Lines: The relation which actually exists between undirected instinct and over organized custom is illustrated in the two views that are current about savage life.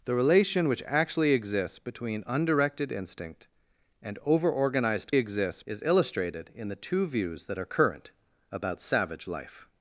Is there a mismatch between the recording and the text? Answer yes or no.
yes